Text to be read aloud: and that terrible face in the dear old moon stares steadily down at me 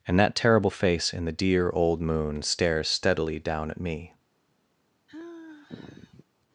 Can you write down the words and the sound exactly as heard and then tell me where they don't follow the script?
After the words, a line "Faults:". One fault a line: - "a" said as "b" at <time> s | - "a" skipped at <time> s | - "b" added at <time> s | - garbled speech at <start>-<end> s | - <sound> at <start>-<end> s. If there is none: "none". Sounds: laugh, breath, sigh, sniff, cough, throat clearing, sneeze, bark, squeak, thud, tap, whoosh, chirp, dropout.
and that terrible face in the dear old moon stares steadily down at me
Faults:
- sigh at 5.1-6.2 s